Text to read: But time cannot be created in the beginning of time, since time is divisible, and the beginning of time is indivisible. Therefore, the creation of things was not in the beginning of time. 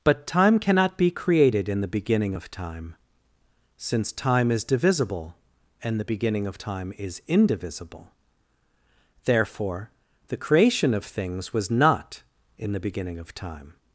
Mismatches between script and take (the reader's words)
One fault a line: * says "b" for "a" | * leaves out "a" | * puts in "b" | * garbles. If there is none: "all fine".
all fine